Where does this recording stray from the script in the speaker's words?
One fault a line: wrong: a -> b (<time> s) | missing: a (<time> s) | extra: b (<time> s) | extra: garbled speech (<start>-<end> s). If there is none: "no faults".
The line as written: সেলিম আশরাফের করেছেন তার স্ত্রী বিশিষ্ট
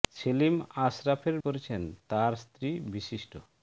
no faults